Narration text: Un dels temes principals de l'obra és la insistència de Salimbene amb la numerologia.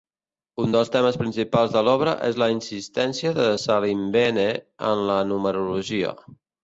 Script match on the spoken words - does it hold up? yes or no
no